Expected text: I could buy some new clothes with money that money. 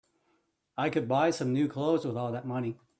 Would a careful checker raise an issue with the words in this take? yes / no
yes